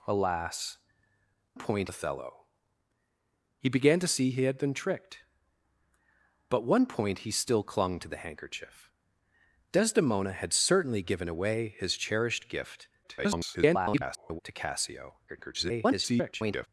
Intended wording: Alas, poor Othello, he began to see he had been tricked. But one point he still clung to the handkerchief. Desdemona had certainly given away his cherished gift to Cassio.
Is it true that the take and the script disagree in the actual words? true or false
true